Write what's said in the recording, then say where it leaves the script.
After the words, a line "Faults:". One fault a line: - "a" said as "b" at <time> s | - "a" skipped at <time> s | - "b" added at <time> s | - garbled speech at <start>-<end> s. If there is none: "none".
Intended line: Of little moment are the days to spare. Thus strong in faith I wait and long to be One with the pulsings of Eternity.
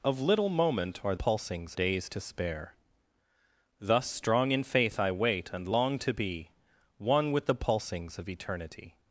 Of little moment are pulsings days to spare. Thus strong in faith I wait and long to be One with the pulsings of Eternity.
Faults:
- "the" said as "pulsings" at 1.1 s